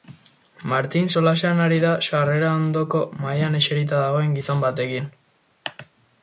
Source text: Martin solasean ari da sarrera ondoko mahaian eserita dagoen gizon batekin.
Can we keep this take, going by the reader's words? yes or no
yes